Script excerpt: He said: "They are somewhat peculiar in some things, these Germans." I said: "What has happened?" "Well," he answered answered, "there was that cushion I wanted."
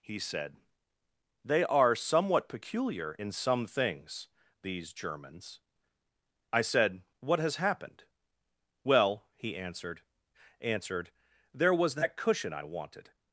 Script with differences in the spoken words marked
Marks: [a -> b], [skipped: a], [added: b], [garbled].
He said: "They are somewhat peculiar in some things, these Germans." I said: "What has happened?" "Well," he answered answered, "there was that cushion I wanted."